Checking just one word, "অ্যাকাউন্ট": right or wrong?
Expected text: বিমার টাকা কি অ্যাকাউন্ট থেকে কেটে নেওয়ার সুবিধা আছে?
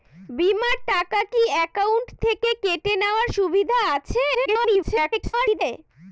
right